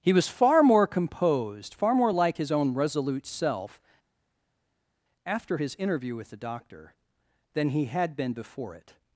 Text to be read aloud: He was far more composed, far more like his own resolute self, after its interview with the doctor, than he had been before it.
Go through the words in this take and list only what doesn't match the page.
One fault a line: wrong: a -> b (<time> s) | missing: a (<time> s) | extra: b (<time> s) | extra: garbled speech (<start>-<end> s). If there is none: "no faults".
wrong: its -> his (5.6 s)